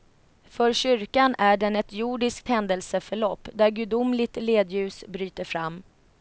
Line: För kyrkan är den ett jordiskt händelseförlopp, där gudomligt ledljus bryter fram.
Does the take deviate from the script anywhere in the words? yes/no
no